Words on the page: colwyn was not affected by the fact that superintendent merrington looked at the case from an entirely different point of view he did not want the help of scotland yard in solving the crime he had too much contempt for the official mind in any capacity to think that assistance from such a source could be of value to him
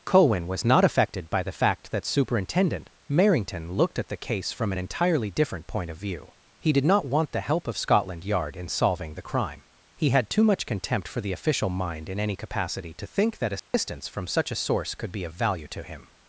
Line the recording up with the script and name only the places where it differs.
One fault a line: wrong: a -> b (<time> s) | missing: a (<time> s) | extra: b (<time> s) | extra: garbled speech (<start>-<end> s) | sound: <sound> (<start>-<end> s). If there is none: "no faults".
sound: dropout (13.6-13.7 s)